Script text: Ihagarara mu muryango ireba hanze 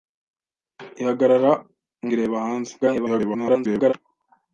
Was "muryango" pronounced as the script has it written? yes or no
no